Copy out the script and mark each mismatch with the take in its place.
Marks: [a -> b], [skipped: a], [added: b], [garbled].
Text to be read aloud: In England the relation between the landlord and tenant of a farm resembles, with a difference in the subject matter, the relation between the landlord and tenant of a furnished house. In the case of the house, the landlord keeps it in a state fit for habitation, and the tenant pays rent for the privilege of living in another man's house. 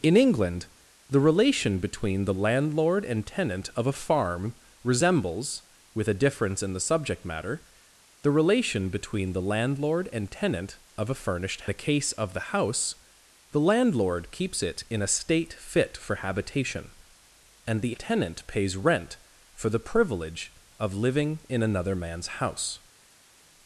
In England the relation between the landlord and tenant of a farm resembles, with a difference in the subject matter, the relation between the landlord and tenant of a furnished [skipped: house. In] the case of the house, the landlord keeps it in a state fit for habitation, and the tenant pays rent for the privilege of living in another man's house.